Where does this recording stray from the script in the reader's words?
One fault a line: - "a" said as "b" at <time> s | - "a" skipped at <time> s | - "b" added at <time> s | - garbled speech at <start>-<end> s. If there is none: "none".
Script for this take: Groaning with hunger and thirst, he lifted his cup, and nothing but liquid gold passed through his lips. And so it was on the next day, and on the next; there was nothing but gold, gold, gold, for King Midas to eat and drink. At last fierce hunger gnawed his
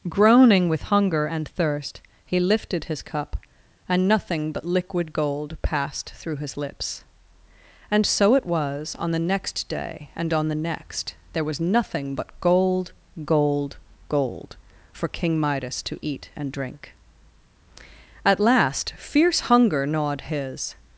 none